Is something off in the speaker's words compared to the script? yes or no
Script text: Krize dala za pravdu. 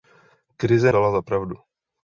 no